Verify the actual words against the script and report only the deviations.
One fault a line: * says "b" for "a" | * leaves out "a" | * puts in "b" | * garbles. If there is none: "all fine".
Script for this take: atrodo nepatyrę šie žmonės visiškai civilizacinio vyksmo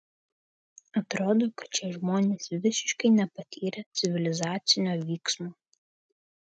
* says "kad" for "nepatyrę"
* puts in "nepatyrę"